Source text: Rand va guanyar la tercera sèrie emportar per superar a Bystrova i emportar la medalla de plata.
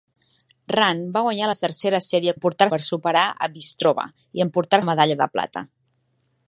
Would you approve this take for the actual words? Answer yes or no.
yes